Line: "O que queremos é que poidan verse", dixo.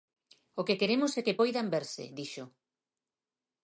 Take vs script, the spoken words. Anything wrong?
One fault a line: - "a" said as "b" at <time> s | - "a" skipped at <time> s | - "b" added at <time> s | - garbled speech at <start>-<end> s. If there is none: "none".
none